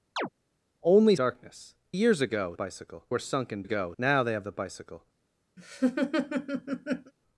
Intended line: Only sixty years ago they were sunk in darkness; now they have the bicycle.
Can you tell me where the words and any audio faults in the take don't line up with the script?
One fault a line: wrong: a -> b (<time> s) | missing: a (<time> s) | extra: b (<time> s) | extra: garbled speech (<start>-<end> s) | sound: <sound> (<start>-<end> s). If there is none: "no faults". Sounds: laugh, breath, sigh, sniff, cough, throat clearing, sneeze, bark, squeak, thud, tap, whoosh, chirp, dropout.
sound: chirp (0.2-0.3 s)
wrong: sixty -> darkness (1.2 s)
wrong: they -> bicycle (2.5 s)
wrong: darkness -> ago (3.6 s)
sound: laugh (5.6-7.1 s)